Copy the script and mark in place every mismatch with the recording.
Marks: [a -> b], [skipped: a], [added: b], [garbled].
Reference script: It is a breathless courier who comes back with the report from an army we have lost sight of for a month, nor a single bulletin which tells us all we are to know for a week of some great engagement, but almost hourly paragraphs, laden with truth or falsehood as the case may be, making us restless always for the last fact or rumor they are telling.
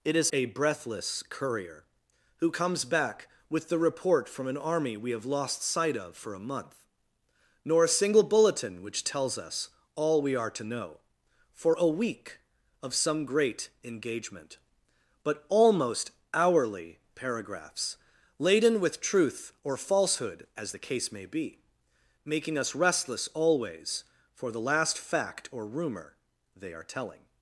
It is a breathless courier who comes back with the report from an army we have lost sight of for a month, nor a single bulletin which tells us all we are to know for a week of some great engagement, but almost hourly paragraphs, laden with truth or falsehood as the case may be, making us restless always for the last fact or rumor they are telling.